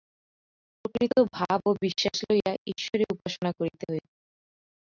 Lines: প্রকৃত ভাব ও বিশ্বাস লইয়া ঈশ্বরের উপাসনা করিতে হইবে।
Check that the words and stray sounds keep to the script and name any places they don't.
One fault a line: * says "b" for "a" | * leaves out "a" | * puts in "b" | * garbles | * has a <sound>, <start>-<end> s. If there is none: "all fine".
all fine